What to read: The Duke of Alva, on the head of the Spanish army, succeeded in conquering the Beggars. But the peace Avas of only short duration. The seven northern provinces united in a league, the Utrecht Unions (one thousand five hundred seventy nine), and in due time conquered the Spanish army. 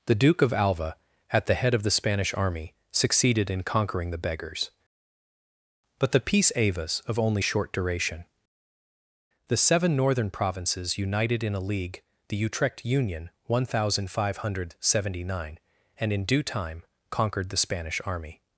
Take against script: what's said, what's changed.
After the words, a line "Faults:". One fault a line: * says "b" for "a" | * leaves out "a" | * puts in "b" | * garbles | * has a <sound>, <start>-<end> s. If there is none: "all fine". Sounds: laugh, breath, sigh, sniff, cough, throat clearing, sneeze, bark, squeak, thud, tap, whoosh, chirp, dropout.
The Duke of Alva, at the head of the Spanish army, succeeded in conquering the Beggars. But the peace Avas of only short duration. The seven northern provinces united in a league, the Utrecht Union (one thousand five hundred seventy nine), and in due time conquered the Spanish army.
Faults:
* says "at" for "on"
* says "Union" for "Unions"